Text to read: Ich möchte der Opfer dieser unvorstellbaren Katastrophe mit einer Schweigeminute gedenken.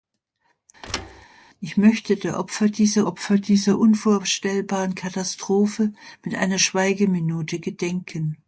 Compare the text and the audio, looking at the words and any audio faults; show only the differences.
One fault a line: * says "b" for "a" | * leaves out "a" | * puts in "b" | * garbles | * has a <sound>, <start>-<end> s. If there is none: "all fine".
* has a thud, 0.8-1.3 s
* puts in "Opfer dieser"